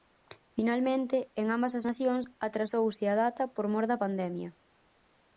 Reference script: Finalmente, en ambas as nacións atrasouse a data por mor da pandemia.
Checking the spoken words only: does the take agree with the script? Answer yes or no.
yes